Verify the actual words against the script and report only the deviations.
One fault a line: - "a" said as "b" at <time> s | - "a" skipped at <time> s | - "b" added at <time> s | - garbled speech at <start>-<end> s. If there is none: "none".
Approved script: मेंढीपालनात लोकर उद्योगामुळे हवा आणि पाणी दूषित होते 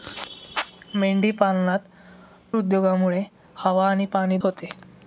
- "लोकर" skipped at 2.6 s
- "दूषित" skipped at 4.4 s